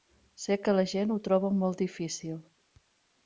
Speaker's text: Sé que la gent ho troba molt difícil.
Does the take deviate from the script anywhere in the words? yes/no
no